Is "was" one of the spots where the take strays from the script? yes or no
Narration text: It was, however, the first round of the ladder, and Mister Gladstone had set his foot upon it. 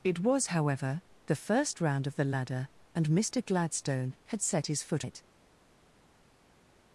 no